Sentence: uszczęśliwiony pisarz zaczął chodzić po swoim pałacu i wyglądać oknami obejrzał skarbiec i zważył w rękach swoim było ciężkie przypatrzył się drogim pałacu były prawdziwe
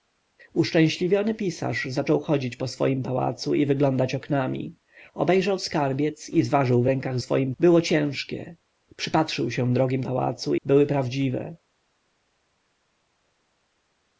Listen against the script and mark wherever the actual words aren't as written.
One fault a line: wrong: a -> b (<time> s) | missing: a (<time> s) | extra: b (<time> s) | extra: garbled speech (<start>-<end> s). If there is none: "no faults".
no faults